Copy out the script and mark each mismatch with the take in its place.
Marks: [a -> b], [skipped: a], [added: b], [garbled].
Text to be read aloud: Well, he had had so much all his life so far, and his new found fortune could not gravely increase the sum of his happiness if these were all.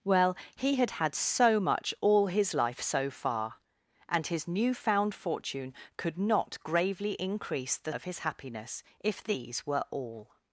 Well, he had had so much all his life so far, and his new found fortune could not gravely increase the [skipped: sum] of his happiness if these were all.